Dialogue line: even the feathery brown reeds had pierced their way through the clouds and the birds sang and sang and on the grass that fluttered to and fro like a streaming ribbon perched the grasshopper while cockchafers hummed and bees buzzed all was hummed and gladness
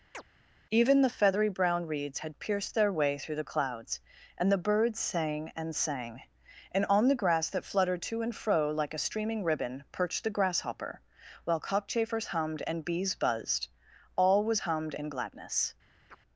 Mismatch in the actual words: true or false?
false